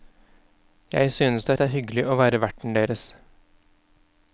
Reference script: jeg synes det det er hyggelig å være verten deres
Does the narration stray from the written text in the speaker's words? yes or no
no